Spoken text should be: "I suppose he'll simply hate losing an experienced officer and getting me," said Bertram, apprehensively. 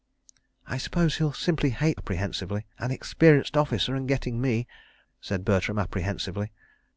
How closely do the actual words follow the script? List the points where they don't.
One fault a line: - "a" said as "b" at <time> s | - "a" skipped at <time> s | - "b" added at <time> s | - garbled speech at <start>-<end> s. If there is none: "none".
- "losing" said as "apprehensively" at 1.9 s